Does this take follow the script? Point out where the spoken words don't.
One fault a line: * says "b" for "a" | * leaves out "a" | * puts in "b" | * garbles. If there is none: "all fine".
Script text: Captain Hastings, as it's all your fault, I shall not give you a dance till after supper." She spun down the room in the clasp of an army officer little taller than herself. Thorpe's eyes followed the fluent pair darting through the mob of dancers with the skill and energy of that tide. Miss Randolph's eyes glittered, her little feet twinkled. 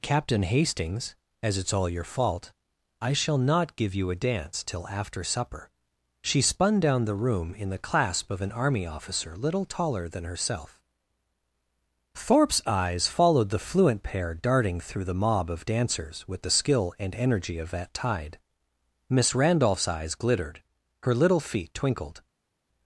all fine